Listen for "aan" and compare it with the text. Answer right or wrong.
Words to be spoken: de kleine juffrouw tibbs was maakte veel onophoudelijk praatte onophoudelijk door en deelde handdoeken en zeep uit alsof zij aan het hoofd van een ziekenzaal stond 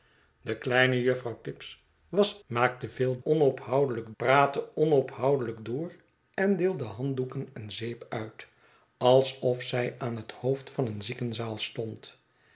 right